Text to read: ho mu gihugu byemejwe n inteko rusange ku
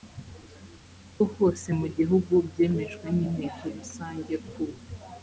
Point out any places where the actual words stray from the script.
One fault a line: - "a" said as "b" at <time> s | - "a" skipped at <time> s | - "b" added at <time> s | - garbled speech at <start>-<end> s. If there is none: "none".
- "hose" added at 1.4 s